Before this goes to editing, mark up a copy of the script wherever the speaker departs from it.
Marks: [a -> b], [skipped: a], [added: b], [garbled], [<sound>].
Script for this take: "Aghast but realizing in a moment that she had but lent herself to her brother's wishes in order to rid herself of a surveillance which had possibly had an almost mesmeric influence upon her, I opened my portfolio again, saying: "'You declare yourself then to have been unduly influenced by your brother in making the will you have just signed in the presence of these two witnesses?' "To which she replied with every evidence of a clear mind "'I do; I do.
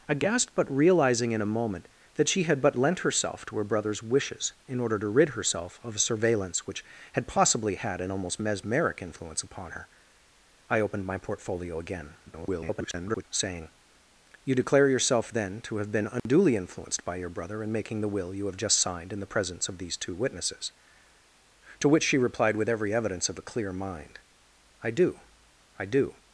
"Aghast but realizing in a moment that she had but lent herself to her brother's wishes in order to rid herself of a surveillance which had possibly had an almost mesmeric influence upon her, I opened my portfolio again, [garbled] saying: "'You declare yourself then to have been unduly [dropout] influenced by your brother in making the will you have just signed in the presence of these two witnesses?' "To which she replied with every evidence of a clear mind "'I do; I do.